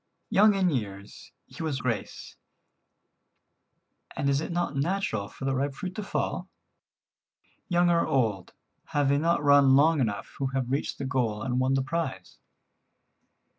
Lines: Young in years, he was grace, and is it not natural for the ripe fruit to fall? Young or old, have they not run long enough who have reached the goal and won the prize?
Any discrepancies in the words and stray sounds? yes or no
no